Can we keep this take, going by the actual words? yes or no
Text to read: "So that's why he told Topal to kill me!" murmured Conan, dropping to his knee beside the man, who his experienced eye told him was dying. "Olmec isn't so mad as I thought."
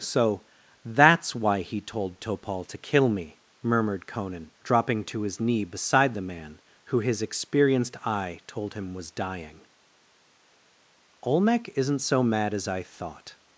yes